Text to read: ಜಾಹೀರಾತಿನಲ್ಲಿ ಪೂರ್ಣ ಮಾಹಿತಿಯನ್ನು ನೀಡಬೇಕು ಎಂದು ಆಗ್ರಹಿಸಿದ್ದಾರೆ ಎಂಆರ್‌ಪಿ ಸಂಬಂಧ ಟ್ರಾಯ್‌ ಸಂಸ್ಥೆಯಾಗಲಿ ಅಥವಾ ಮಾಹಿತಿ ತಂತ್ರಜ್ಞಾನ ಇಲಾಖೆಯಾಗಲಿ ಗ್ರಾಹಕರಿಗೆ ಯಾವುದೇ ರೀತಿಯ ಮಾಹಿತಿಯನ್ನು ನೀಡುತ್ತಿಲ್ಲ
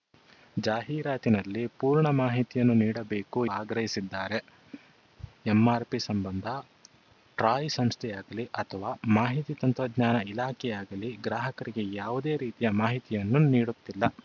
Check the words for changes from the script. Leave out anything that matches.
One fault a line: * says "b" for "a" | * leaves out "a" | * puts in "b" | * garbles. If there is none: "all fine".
* leaves out "ಎಂದು"